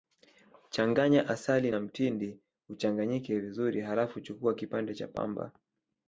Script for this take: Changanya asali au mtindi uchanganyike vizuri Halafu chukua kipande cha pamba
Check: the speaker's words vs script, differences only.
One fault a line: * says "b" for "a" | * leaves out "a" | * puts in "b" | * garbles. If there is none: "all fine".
* says "na" for "au"